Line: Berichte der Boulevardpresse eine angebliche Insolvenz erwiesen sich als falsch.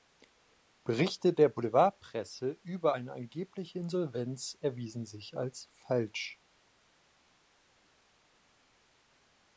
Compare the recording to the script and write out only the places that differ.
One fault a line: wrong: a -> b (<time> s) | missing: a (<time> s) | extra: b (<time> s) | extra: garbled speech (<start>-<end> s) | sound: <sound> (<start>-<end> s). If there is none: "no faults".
extra: über (2.6 s)